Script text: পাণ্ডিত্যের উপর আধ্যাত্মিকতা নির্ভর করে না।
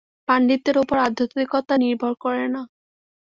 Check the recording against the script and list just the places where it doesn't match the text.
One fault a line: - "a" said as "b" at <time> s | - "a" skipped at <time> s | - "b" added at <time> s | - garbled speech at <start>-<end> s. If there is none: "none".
none